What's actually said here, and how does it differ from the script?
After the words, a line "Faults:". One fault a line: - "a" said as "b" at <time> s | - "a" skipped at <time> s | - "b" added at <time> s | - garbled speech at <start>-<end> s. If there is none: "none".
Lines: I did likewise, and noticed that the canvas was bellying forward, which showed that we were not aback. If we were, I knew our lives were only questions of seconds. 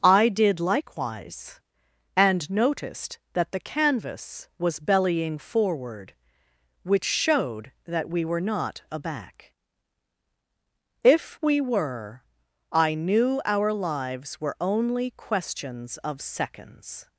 I did likewise, and noticed that the canvas was bellying forward, which showed that we were not aback. If we were, I knew our lives were only questions of seconds.
Faults:
none